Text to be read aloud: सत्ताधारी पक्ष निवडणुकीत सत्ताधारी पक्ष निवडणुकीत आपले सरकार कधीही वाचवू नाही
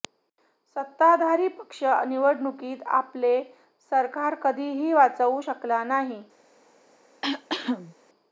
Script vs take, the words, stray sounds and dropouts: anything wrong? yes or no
yes